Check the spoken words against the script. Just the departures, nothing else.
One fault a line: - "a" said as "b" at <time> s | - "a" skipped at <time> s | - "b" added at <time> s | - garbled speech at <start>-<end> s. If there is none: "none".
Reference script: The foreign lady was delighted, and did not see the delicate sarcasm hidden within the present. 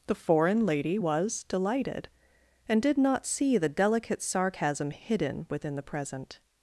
none